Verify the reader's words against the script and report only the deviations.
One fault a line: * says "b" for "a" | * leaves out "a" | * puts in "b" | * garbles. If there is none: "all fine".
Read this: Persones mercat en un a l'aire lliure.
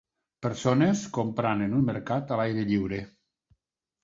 * says "comprant" for "mercat"
* puts in "mercat"